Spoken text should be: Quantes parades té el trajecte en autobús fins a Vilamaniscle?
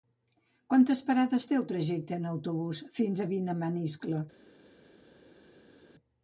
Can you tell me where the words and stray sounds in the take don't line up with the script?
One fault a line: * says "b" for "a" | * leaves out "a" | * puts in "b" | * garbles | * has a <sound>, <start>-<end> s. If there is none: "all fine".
all fine